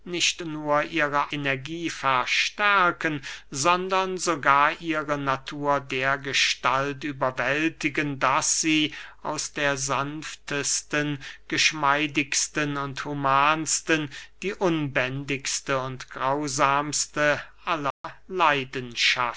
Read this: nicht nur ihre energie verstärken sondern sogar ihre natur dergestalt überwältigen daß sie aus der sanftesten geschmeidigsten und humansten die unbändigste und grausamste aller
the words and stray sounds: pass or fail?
fail